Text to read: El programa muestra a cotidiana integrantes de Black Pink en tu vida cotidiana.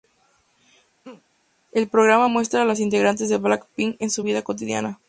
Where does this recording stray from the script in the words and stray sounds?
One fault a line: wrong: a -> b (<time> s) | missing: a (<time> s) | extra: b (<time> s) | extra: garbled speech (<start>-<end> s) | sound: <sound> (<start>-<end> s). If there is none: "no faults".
sound: laugh (1.0-1.2 s)
wrong: cotidiana -> las (2.6 s)
wrong: tu -> su (4.1 s)